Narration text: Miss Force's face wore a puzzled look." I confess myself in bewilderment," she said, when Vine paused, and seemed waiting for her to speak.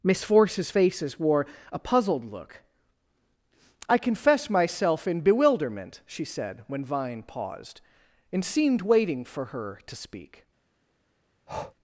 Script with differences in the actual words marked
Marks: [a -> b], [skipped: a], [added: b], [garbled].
Miss Force's [face -> faces] wore a puzzled look." I confess myself in bewilderment," she said, when Vine paused, and seemed waiting for her to speak.